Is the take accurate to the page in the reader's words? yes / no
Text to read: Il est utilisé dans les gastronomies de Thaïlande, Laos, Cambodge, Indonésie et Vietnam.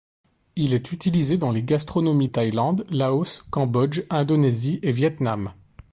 no